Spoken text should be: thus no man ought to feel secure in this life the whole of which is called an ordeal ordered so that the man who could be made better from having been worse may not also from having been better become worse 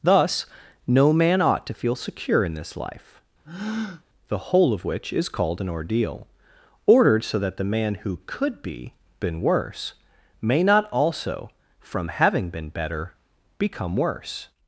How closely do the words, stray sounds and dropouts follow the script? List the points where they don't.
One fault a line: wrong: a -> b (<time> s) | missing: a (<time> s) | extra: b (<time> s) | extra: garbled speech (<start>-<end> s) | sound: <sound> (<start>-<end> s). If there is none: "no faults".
sound: breath (3.4-4.0 s)
missing: made better from having (8.9 s)